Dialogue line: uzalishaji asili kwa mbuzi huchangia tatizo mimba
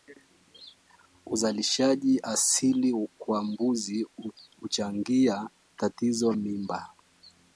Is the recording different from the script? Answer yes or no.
no